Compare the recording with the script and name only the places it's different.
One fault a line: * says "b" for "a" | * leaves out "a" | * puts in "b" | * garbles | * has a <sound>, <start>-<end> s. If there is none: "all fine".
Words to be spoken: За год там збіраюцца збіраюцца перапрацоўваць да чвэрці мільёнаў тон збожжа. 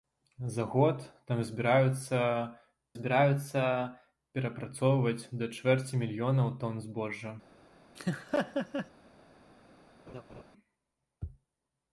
* has a laugh, 8.0-8.9 s
* has a laugh, 10.1-10.4 s